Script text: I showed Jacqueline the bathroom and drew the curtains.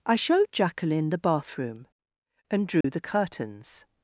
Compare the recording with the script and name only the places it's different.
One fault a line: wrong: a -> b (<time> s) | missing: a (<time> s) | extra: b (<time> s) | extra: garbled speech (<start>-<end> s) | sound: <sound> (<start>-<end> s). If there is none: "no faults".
sound: dropout (2.8-2.8 s)